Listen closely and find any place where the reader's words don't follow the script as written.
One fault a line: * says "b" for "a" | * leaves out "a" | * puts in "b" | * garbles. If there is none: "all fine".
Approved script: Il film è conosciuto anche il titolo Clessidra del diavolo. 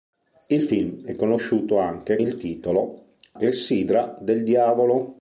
all fine